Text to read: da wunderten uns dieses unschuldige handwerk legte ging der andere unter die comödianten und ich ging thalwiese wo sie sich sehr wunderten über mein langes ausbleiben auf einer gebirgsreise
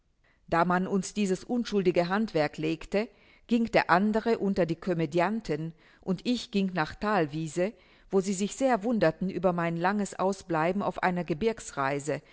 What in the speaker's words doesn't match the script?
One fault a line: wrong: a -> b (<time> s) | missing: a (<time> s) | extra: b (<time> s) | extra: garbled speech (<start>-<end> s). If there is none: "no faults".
wrong: wunderten -> man (0.7 s)
extra: nach (6.7 s)